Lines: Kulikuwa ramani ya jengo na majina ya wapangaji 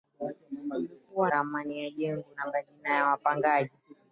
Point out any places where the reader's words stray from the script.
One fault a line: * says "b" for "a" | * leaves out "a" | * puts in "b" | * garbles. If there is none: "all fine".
all fine